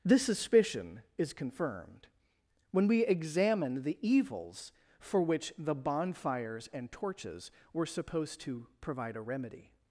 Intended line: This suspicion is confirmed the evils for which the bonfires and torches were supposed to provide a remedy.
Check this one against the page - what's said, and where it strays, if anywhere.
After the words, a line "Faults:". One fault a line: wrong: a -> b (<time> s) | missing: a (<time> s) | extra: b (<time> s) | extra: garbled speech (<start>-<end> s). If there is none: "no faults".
This suspicion is confirmed when we examine the evils for which the bonfires and torches were supposed to provide a remedy.
Faults:
extra: when we examine (2.7 s)